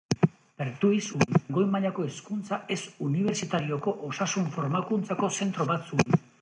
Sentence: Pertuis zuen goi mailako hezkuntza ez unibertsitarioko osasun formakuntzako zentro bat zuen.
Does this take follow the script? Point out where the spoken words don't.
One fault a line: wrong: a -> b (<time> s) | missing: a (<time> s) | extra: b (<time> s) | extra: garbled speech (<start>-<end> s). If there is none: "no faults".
no faults